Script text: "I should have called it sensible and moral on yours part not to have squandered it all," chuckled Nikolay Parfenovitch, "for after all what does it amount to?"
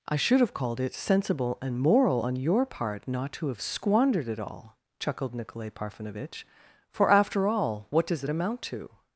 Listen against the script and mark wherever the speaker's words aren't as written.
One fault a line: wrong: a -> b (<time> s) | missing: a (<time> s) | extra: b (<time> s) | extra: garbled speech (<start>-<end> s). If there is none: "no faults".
wrong: yours -> your (2.3 s)